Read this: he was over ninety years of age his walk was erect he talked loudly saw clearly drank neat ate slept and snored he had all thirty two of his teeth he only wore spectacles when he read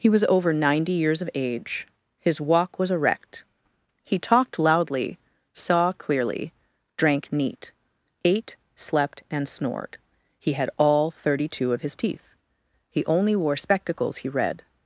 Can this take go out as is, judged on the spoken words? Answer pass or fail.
fail